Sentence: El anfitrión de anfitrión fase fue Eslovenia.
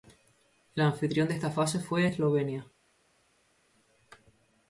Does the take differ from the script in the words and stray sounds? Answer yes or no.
yes